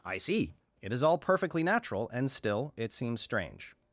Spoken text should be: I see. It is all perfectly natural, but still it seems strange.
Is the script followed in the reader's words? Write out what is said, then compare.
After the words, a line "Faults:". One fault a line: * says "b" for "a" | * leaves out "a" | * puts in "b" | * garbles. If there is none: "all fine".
I see. It is all perfectly natural, and still it seems strange.
Faults:
* says "and" for "but"